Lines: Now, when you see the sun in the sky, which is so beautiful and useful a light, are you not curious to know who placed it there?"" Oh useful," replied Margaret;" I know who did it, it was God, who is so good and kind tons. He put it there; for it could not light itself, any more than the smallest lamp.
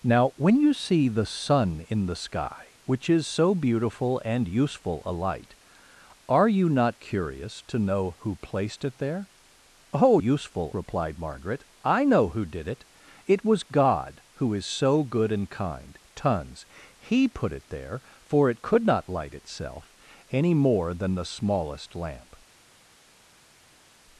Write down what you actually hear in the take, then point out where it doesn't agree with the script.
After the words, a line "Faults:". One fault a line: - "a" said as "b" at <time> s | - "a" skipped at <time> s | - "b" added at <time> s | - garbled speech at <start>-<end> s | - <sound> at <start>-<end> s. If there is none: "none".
Now, when you see the sun in the sky, which is so beautiful and useful a light, are you not curious to know who placed it there?"" Oh useful," replied Margaret;" I know who did it, it was God, who is so good and kind tons. He put it there; for it could not light itself, any more than the smallest lamp.
Faults:
none